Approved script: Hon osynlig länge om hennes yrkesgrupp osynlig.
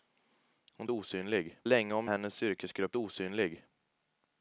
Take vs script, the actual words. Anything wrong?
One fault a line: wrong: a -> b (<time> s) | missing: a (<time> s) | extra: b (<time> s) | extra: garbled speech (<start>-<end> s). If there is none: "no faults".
no faults